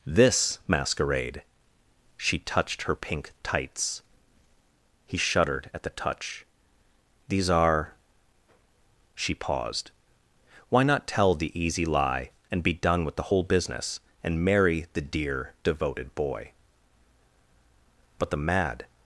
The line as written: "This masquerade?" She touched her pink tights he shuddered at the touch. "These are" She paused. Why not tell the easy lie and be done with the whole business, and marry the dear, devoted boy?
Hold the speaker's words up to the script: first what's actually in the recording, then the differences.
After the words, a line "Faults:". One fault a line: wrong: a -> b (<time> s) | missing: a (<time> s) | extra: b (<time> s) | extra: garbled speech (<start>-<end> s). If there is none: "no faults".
"This masquerade?" She touched her pink tights he shuddered at the touch. "These are" She paused. Why not tell the easy lie and be done with the whole business, and marry the dear, devoted boy? But the mad
Faults:
extra: But the mad (18.2 s)